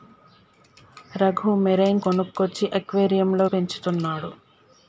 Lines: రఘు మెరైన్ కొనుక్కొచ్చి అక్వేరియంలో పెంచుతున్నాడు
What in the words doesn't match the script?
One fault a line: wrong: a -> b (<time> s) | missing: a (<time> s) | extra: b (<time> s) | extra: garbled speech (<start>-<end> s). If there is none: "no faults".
no faults